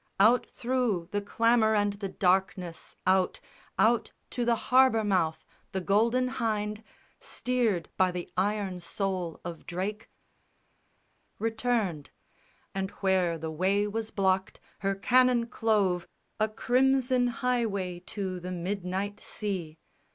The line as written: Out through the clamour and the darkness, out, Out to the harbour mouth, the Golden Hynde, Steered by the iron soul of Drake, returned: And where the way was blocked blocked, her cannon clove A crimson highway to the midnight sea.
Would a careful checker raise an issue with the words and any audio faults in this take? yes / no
yes